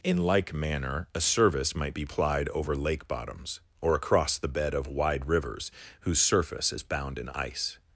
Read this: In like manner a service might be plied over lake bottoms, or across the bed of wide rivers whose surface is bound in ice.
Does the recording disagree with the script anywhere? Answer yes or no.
no